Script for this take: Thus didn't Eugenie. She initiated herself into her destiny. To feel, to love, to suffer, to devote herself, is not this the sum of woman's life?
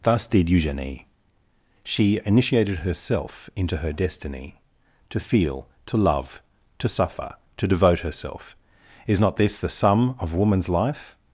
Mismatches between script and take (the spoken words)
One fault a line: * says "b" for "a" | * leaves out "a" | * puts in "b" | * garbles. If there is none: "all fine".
* says "did" for "didn't"